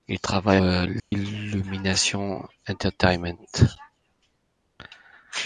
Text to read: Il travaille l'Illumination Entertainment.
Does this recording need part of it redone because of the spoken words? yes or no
no